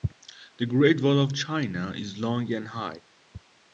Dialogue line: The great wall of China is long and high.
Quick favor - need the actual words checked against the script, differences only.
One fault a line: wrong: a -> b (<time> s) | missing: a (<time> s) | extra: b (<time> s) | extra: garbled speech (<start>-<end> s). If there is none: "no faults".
no faults